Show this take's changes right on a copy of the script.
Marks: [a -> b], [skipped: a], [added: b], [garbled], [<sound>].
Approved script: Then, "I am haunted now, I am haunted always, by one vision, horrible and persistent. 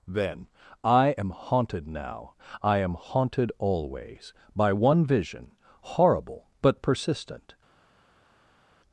Then, "I am haunted now, I am haunted always, by one vision, horrible [and -> but] persistent.